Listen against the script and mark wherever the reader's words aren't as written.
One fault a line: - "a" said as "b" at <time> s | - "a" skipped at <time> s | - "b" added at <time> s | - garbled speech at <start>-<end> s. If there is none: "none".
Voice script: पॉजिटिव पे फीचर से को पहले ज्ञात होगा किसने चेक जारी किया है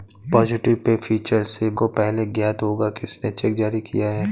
none